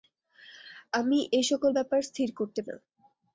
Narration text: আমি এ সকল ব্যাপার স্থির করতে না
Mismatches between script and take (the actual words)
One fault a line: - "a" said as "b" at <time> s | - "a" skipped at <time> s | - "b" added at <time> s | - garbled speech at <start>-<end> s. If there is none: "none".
none